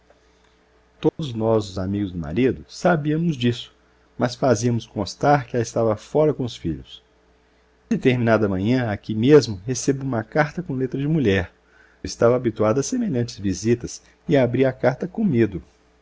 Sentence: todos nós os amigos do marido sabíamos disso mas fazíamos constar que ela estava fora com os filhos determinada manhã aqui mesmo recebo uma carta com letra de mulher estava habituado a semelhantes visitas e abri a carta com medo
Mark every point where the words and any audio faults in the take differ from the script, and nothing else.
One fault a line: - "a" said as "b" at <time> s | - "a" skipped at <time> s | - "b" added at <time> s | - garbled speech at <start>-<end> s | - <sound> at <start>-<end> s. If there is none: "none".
- dropout at 1.1-1.2 s